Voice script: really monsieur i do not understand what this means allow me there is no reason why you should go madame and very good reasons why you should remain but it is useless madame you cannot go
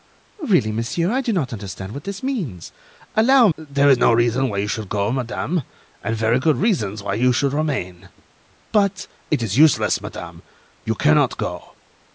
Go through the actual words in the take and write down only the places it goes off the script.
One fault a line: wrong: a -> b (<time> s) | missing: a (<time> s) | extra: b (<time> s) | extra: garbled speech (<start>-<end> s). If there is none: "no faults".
missing: me (3.5 s)